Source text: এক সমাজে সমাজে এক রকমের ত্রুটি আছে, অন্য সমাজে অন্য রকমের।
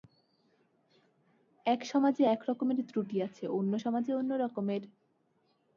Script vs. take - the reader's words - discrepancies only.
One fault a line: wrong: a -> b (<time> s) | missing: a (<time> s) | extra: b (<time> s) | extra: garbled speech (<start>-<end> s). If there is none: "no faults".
missing: সমাজে (2.2 s)